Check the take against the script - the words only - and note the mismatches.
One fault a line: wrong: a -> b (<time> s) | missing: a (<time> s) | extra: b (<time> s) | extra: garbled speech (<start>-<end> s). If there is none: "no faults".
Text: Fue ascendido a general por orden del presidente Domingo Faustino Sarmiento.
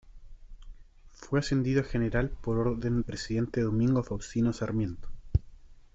missing: del (3.0 s)